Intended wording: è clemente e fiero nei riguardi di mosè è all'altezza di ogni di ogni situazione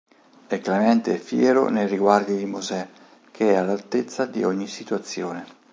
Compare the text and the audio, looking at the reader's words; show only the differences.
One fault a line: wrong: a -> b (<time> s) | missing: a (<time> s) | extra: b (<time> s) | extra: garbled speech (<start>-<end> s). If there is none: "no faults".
extra: che (3.3 s)
missing: di ogni (4.7 s)